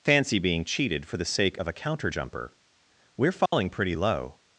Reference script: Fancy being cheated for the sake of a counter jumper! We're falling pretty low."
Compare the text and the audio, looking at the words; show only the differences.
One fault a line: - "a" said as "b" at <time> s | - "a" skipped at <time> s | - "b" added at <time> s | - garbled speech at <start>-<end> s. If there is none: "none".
none